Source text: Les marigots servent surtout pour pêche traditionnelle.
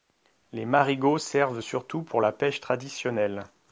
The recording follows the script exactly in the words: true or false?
false